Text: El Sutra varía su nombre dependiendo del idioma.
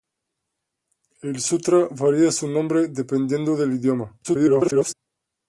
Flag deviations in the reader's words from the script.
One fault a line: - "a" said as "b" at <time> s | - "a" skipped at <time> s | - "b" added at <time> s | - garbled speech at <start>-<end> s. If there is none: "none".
- garbled speech at 4.2-4.9 s